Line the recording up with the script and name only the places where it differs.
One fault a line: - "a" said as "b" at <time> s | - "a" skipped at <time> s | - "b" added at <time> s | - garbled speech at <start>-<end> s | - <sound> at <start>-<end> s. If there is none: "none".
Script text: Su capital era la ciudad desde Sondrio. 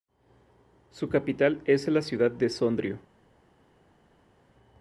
- "era" said as "es" at 1.6 s
- "desde" said as "de" at 2.3 s